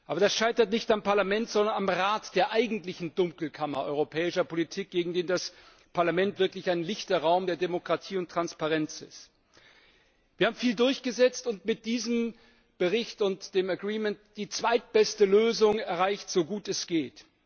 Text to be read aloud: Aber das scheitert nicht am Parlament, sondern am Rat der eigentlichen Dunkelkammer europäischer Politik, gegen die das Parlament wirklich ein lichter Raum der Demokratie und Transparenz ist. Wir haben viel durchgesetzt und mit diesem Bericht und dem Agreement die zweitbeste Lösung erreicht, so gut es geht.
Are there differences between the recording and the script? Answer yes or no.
no